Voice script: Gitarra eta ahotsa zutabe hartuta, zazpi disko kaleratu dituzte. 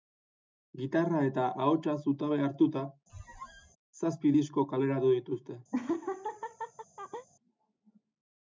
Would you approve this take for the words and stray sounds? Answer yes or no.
no